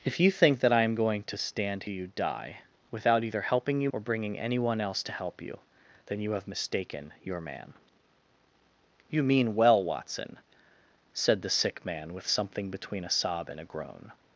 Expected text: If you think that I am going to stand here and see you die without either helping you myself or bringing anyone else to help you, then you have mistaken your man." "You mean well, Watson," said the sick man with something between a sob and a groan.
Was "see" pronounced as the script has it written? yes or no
no